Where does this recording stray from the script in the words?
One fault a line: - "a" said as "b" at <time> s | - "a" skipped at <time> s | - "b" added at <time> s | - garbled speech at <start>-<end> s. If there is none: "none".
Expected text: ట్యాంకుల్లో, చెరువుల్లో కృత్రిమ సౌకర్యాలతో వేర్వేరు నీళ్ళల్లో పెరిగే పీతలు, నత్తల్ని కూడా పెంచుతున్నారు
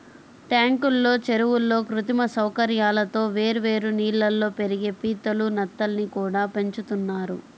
none